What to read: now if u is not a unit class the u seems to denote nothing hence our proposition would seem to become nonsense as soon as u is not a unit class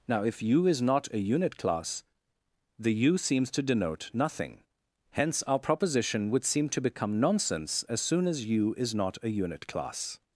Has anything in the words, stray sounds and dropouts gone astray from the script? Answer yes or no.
no